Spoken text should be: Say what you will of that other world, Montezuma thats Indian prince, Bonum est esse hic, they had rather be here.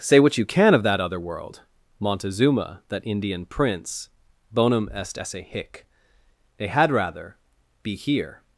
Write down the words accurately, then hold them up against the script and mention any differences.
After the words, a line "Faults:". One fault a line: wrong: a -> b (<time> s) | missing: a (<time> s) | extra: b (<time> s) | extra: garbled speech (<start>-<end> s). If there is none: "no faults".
Say what you can of that other world, Montezuma that Indian prince, Bonum est esse hic, they had rather be here.
Faults:
wrong: will -> can (0.5 s)
wrong: thats -> that (2.9 s)